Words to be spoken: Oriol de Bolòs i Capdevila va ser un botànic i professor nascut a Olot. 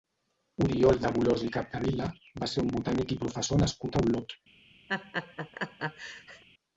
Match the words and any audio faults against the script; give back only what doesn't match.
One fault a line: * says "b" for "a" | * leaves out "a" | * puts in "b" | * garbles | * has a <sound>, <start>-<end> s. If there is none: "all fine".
* has a laugh, 4.9-6.4 s